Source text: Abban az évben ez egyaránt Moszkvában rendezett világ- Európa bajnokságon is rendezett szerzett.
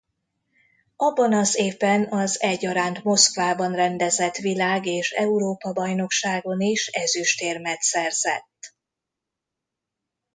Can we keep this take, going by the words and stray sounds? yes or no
no